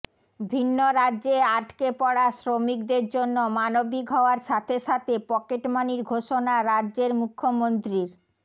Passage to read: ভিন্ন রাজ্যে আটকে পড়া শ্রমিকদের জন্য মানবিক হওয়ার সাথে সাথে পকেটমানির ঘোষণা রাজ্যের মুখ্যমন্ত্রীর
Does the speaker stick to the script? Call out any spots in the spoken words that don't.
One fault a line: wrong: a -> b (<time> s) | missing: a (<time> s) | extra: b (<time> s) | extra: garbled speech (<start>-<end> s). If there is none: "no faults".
no faults